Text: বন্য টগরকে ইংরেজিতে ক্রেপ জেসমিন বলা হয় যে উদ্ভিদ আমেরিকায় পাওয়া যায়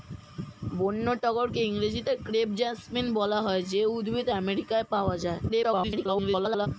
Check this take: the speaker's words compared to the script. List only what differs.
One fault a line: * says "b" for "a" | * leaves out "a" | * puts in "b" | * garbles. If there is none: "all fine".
* garbles